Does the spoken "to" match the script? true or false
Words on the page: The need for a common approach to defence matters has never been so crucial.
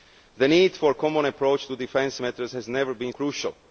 true